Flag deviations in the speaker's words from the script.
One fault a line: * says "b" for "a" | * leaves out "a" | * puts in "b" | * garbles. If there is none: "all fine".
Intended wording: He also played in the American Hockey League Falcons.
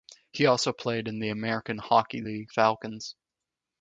all fine